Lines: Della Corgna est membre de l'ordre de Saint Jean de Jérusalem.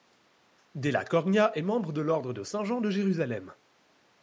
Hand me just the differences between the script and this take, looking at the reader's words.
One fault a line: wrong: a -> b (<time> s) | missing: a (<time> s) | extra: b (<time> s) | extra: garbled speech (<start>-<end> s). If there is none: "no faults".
no faults